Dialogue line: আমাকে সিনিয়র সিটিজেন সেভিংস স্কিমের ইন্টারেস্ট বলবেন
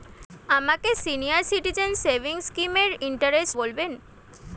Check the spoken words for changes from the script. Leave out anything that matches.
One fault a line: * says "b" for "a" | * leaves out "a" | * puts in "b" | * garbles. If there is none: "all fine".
all fine